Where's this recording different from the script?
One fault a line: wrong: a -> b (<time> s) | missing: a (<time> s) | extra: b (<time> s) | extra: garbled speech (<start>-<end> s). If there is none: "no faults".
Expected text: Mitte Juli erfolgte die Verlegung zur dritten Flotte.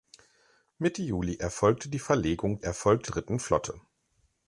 wrong: zur -> erfolgte (2.6 s)